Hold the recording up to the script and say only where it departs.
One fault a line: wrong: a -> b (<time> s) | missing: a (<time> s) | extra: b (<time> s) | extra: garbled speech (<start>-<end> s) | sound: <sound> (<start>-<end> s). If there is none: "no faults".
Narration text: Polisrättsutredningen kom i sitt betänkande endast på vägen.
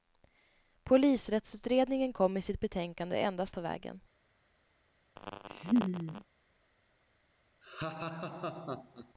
sound: laugh (5.2-6.2 s)
sound: laugh (7.6-9.1 s)